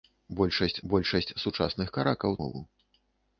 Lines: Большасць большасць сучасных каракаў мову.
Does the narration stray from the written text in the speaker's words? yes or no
no